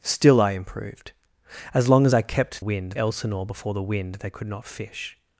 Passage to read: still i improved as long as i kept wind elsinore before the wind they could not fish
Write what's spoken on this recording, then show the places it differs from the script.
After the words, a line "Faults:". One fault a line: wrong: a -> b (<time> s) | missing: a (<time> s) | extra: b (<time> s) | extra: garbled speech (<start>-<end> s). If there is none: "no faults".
still i improved as long as i kept wind elsinore before the wind they could not fish
Faults:
no faults